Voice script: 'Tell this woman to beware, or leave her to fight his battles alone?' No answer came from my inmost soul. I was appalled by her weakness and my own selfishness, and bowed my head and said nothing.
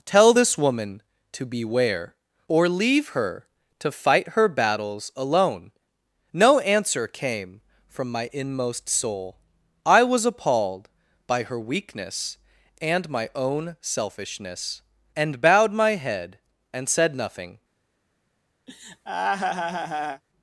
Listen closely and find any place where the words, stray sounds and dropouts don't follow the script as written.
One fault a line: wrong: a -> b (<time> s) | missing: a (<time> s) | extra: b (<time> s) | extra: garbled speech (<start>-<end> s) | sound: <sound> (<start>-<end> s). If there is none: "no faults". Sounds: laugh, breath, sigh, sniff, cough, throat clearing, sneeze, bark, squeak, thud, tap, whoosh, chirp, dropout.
wrong: his -> her (4.3 s)
sound: laugh (18.7-20.2 s)